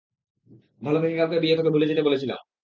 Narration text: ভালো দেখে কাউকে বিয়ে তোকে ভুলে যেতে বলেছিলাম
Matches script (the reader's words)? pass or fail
pass